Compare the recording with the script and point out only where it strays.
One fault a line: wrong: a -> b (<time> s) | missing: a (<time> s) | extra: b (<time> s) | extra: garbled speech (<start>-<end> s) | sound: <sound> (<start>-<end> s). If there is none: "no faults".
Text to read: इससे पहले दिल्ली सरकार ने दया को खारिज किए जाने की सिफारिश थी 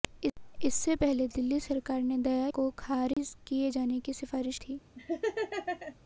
sound: dropout (3.1-3.2 s)
sound: laugh (5.0-6.0 s)